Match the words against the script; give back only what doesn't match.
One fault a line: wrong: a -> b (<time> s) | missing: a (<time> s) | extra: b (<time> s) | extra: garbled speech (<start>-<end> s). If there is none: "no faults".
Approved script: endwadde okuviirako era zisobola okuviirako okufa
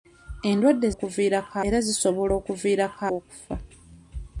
no faults